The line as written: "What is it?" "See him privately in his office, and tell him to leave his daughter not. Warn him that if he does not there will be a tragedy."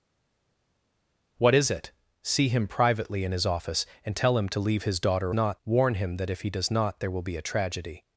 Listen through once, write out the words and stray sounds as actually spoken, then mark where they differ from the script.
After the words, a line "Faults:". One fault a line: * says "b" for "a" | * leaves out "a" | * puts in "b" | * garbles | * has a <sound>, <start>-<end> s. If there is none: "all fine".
"What is it?" "See him privately in his office, and tell him to leave his daughter not. Warn him that if he does not there will be a tragedy."
Faults:
all fine